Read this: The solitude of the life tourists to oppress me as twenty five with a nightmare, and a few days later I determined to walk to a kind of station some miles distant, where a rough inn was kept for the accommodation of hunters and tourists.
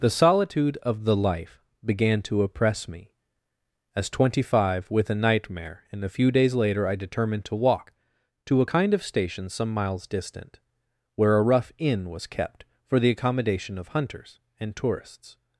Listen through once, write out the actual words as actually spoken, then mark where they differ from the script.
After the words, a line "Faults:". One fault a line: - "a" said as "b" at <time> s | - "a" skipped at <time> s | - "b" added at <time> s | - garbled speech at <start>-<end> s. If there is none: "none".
The solitude of the life began to oppress me as twenty five with a nightmare, and a few days later I determined to walk to a kind of station some miles distant, where a rough inn was kept for the accommodation of hunters and tourists.
Faults:
- "tourists" said as "began" at 1.9 s